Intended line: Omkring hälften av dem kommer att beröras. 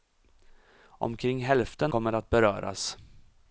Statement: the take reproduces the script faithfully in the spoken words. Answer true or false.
false